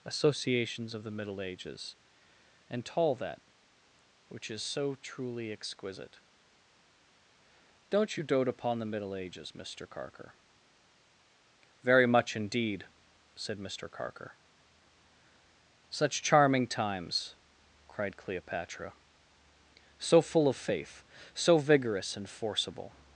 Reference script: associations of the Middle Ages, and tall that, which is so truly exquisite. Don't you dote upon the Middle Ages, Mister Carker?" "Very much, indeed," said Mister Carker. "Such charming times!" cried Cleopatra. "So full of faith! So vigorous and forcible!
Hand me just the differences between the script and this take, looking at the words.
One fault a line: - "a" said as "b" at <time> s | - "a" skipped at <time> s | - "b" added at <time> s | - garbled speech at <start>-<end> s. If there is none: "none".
none